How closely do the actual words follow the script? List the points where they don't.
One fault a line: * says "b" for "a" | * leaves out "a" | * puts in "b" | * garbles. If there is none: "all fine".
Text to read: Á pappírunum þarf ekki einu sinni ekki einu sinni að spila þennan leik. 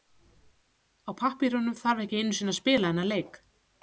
* leaves out "ekki einu sinni"